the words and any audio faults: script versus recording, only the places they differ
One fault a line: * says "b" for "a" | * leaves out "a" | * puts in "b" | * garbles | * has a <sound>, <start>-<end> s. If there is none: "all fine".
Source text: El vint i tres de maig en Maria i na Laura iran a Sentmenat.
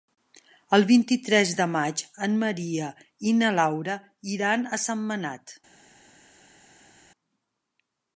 all fine